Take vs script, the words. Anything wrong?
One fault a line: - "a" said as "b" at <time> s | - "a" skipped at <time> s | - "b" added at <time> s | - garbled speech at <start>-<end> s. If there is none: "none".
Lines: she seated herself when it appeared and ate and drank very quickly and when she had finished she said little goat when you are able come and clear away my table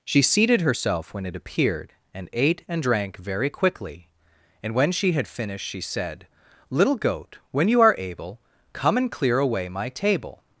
none